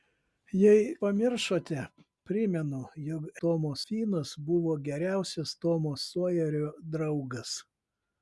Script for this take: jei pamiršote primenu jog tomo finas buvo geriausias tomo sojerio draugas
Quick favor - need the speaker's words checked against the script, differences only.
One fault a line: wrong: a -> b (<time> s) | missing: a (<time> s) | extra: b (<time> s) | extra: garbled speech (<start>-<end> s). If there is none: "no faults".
no faults